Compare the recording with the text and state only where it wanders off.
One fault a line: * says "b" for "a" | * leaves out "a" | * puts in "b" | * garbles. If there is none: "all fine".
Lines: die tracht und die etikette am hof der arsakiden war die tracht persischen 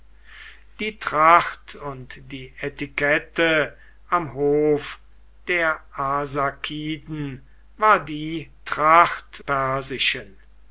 all fine